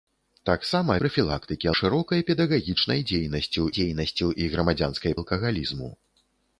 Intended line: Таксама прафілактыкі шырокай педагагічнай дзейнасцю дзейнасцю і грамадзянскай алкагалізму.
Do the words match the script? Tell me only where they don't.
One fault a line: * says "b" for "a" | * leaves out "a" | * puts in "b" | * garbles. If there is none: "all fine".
all fine